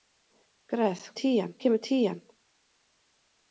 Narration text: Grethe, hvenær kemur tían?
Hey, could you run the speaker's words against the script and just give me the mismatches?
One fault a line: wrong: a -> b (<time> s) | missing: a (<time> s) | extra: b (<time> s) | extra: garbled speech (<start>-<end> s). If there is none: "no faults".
wrong: hvenær -> tían (1.2 s)